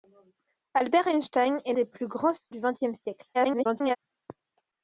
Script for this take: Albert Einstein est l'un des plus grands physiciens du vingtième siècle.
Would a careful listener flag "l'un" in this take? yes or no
yes